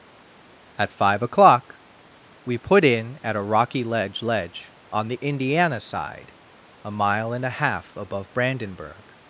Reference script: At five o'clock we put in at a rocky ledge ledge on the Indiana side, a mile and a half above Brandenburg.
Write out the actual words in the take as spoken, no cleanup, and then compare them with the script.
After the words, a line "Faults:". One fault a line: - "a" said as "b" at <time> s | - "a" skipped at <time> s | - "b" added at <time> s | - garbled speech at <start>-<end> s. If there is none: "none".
At five o'clock we put in at a rocky ledge ledge on the Indiana side, a mile and a half above Brandenburg.
Faults:
none